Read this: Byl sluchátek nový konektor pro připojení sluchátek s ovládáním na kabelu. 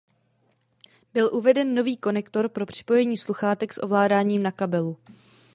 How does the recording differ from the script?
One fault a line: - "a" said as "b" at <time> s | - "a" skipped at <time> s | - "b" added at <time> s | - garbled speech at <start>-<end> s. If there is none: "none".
- "sluchátek" said as "uveden" at 1.3 s